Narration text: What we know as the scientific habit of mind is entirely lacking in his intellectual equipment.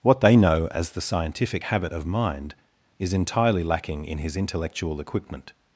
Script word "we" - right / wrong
wrong